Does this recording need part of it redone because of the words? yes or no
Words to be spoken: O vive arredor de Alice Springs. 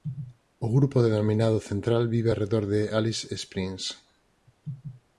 yes